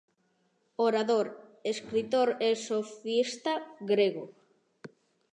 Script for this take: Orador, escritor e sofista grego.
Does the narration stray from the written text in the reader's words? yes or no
no